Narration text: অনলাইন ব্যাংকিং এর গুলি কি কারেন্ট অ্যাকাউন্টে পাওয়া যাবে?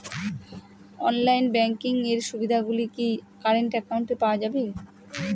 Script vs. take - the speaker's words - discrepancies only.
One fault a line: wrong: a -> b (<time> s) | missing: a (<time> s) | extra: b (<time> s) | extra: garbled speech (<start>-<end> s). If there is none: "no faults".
extra: সুবিধে (2.3 s)